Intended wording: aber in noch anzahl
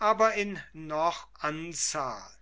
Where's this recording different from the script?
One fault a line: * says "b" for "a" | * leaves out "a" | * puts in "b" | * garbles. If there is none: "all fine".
all fine